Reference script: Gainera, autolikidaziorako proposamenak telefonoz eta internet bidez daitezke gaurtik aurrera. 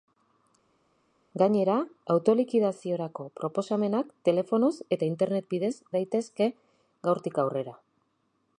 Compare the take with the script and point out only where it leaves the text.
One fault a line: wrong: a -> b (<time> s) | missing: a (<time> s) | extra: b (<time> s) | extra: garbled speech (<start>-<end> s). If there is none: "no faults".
no faults